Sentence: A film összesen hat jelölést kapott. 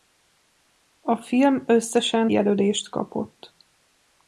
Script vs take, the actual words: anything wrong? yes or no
yes